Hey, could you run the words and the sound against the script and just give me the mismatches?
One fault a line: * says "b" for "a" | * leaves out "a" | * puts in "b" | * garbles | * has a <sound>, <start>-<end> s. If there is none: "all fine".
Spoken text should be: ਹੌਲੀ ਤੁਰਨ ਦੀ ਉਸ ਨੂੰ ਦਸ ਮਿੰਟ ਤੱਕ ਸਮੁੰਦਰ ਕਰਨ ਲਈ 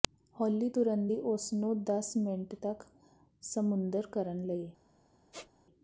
* has a squeak, 5.3-5.5 s